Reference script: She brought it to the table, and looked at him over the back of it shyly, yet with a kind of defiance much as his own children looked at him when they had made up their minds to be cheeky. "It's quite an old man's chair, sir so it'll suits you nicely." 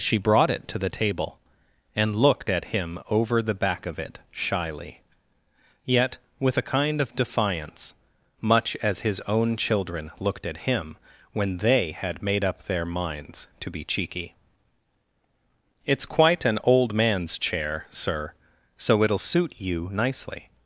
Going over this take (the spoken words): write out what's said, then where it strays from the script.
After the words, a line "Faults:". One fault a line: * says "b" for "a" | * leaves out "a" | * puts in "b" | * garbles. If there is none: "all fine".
She brought it to the table, and looked at him over the back of it shyly, yet with a kind of defiance much as his own children looked at him when they had made up their minds to be cheeky. "It's quite an old man's chair, sir so it'll suit you nicely."
Faults:
* says "suit" for "suits"